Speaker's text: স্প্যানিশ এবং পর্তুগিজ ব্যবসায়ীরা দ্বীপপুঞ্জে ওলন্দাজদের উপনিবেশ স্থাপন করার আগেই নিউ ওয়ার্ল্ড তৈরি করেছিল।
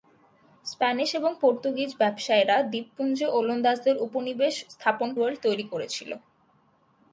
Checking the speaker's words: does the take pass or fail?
fail